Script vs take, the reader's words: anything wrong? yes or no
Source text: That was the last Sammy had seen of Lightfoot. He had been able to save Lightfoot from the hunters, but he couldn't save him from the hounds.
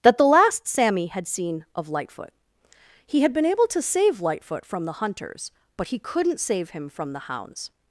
yes